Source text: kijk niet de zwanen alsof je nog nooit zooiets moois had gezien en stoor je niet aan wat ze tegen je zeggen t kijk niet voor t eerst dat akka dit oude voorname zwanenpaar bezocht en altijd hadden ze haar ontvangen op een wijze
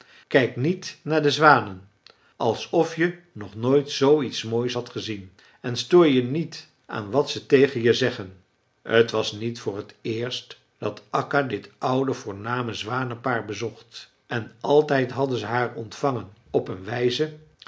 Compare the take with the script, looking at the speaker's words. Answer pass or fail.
fail